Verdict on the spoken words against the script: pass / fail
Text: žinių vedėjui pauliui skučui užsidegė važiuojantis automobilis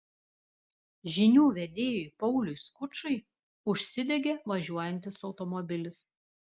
pass